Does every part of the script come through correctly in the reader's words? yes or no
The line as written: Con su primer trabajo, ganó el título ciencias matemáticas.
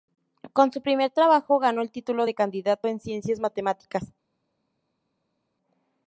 no